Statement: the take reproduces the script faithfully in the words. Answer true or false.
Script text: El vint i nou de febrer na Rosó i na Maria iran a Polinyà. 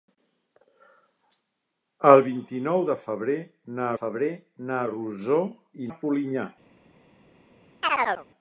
false